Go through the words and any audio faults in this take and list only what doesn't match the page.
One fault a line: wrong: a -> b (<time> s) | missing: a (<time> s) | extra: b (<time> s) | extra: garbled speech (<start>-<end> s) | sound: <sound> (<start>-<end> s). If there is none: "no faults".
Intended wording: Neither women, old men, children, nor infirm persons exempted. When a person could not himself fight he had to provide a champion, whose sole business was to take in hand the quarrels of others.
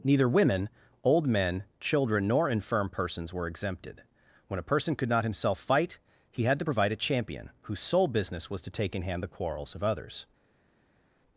extra: were (3.3 s)